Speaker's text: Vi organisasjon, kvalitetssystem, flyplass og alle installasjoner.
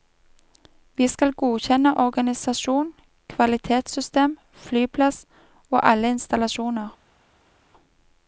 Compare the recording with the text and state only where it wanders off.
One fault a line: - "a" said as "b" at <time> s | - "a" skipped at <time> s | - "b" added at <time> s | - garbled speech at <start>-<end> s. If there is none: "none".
- "skal godkjenne" added at 1.1 s